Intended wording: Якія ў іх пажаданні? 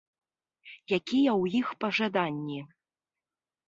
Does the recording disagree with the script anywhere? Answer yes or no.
no